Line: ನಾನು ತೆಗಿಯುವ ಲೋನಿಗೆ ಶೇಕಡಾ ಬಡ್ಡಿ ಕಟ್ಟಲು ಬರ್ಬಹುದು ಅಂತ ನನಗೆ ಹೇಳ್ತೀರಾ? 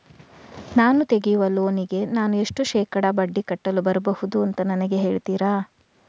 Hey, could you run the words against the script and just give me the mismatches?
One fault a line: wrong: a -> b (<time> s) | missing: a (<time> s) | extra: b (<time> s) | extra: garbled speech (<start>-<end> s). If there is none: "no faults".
extra: ನಾನು ಎಷ್ಟು (2.1 s)